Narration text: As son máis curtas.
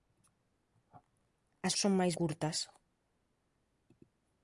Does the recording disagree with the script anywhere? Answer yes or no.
no